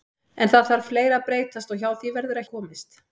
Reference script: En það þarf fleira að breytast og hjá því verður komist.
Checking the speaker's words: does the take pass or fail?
pass